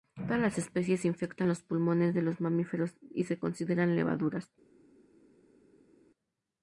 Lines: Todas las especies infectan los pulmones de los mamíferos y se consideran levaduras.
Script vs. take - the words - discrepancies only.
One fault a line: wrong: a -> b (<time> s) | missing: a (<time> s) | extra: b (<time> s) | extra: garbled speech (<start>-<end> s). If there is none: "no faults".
no faults